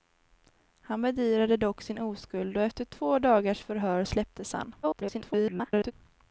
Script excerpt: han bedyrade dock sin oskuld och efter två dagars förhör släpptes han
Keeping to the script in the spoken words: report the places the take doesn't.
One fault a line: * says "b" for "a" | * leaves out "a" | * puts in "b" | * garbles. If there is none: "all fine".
* garbles